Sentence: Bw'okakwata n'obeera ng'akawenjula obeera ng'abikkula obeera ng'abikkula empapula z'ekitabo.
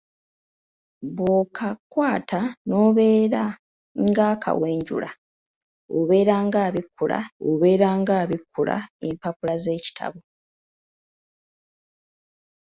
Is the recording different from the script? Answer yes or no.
no